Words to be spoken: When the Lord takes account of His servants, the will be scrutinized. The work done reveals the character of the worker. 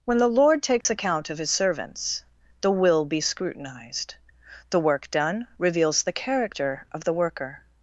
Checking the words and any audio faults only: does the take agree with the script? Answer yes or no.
no